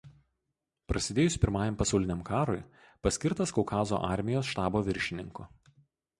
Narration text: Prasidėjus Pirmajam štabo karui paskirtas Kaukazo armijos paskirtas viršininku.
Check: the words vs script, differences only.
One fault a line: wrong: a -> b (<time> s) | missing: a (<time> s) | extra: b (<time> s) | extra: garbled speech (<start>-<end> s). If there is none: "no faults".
wrong: štabo -> pasauliniam (1.8 s)
wrong: paskirtas -> štabo (4.5 s)